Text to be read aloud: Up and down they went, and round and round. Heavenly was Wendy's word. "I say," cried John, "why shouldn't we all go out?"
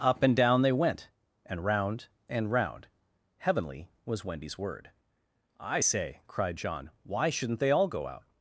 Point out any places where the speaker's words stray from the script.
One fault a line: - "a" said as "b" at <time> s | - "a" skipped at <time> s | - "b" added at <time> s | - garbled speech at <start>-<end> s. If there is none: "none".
- "we" said as "they" at 7.6 s